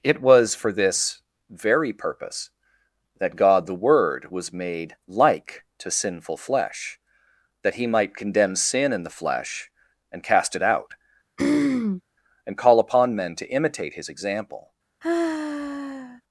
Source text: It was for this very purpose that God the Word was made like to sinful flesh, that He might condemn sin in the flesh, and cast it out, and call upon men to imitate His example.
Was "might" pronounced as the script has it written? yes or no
yes